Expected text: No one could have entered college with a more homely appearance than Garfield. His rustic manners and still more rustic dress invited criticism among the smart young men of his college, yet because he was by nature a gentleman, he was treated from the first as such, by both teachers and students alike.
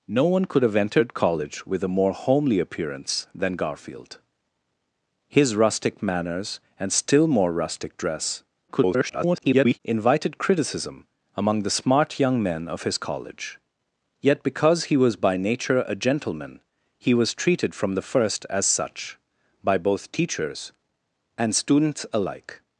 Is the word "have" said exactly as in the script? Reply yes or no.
yes